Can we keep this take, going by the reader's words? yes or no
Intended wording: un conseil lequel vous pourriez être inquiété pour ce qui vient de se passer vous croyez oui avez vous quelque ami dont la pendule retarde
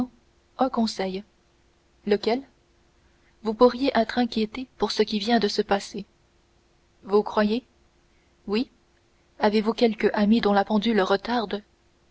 yes